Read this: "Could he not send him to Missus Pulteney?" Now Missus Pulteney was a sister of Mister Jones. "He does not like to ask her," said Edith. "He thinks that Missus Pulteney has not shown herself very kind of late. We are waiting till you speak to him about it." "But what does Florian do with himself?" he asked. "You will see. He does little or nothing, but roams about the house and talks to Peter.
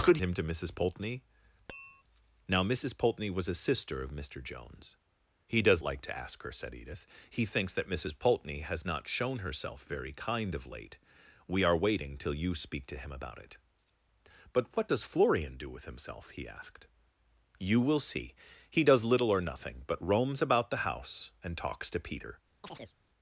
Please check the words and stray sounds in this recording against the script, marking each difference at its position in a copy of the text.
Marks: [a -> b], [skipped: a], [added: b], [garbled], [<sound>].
"Could [skipped: he not send] him to Missus Pulteney?" [tap] Now Missus Pulteney was a sister of Mister Jones. "He does [skipped: not] like to ask her," said Edith. "He thinks that Missus Pulteney has not shown herself very kind of late. We are waiting till you speak to him about it." "But what does Florian do with himself?" he asked. "You will see. He does little or nothing, but roams about the house and talks to Peter. [chirp]